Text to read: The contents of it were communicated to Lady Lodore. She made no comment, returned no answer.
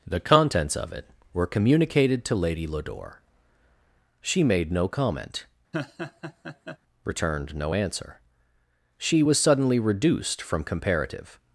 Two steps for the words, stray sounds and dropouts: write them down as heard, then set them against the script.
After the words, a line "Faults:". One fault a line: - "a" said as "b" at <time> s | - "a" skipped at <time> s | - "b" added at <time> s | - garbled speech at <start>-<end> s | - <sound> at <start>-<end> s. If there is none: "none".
The contents of it were communicated to Lady Lodore. She made no comment, returned no answer. She was suddenly reduced from comparative
Faults:
- laugh at 5.7-6.8 s
- "She was suddenly reduced from comparative" added at 9.0 s